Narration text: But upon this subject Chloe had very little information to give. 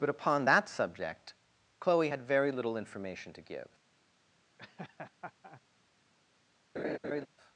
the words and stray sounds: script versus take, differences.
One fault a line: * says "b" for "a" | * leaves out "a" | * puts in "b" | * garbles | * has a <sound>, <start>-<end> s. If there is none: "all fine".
* says "that" for "this"
* has a laugh, 4.6-5.6 s
* has a laugh, 6.8-7.3 s